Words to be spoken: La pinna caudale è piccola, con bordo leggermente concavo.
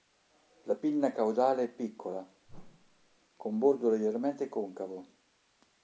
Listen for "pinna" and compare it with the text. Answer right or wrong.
right